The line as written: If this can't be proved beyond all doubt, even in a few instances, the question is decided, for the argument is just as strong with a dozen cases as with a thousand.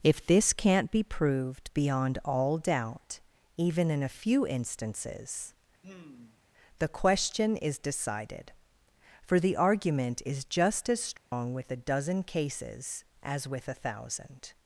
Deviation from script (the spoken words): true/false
false